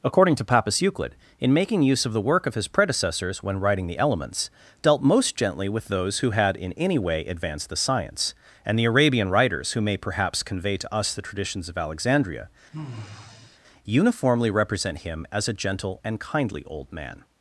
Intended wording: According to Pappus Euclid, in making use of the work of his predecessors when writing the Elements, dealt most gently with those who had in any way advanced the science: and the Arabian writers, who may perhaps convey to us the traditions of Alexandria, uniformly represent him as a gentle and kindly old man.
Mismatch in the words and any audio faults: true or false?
true